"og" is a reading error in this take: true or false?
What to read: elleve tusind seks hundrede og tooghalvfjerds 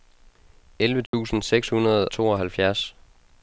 true